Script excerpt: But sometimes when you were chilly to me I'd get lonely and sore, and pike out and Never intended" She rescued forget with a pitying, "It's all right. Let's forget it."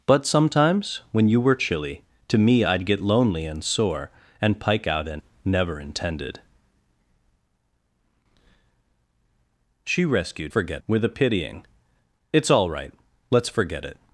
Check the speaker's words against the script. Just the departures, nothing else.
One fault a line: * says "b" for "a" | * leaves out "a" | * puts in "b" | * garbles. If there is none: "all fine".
all fine